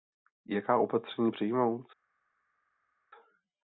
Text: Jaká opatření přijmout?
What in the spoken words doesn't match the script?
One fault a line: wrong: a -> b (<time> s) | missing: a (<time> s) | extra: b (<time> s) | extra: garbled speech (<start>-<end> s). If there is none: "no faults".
no faults